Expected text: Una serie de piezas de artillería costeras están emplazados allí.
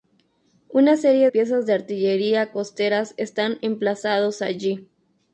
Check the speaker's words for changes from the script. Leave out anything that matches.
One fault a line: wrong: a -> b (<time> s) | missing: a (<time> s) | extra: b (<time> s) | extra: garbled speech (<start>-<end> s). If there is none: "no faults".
missing: de (1.3 s)